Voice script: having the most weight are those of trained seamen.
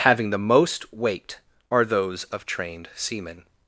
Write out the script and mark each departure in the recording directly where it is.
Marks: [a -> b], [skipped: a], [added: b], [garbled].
having the most weight are those of trained seamen.